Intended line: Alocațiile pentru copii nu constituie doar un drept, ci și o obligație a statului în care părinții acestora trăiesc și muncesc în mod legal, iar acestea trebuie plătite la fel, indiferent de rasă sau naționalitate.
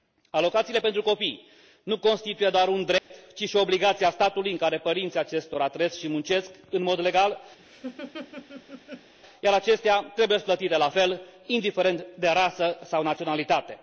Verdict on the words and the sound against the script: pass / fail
fail